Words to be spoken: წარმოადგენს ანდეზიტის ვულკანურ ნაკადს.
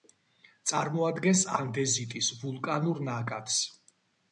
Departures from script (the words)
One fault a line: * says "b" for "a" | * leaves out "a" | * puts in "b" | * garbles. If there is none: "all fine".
all fine